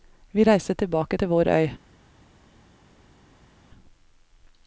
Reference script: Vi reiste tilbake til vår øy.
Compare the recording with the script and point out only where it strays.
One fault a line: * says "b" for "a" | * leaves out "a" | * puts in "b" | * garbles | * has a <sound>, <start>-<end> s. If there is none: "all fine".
all fine